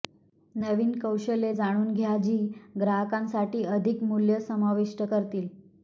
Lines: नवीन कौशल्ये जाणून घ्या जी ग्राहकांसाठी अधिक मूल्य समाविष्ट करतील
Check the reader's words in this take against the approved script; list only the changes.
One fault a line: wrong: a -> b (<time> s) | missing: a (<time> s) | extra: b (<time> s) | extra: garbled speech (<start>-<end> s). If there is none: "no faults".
no faults